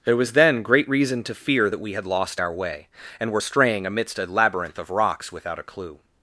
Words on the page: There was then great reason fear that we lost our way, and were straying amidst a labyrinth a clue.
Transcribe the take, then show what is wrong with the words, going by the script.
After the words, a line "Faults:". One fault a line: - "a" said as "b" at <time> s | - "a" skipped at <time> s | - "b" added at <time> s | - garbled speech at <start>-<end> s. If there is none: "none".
There was then great reason to fear that we had lost our way, and were straying amidst a labyrinth of rocks without a clue.
Faults:
- "to" added at 1.2 s
- "had" added at 1.9 s
- "of rocks without" added at 4.8 s